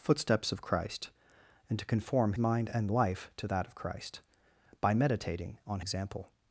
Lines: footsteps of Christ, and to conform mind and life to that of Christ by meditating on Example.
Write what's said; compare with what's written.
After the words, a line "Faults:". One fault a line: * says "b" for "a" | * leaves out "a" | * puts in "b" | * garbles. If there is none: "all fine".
footsteps of Christ, and to conform mind and life to that of Christ by meditating on Example.
Faults:
all fine